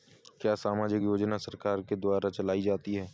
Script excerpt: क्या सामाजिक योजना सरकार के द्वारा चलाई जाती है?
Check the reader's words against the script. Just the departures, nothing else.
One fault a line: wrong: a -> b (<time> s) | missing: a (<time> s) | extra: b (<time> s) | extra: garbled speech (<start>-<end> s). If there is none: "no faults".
no faults